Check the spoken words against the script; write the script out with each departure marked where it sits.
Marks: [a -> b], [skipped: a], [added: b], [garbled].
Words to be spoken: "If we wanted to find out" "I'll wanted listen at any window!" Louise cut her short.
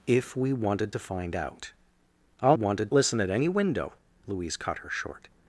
"If we wanted to find out" "I'll wanted listen at any window!" Louise cut her short.